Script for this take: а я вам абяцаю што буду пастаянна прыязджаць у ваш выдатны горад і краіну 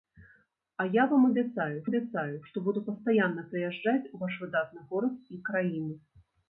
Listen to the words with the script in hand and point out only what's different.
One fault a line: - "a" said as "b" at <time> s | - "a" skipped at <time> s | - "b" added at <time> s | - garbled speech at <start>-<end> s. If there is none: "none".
- "абяцаю" added at 1.8 s